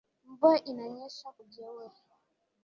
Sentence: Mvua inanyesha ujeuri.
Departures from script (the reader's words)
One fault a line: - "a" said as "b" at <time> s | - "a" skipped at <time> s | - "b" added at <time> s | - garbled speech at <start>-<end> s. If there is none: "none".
none